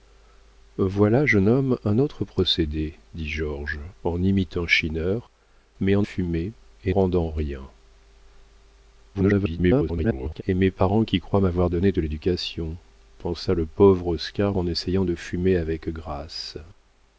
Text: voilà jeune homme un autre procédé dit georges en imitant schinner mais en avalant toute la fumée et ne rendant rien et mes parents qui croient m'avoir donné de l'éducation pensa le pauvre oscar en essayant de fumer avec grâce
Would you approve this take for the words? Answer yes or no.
no